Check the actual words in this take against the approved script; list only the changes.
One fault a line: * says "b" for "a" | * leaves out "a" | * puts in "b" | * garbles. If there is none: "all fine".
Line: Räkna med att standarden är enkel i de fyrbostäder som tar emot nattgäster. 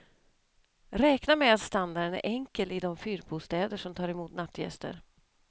all fine